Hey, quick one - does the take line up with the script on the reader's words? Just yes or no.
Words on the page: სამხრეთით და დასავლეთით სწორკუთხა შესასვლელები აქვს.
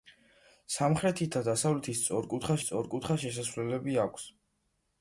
no